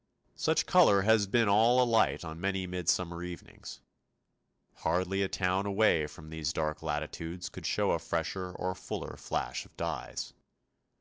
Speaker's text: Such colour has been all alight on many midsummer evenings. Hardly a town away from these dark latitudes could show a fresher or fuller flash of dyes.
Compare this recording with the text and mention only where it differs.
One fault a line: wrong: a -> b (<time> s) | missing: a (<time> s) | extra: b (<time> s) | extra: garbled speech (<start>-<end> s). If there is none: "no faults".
no faults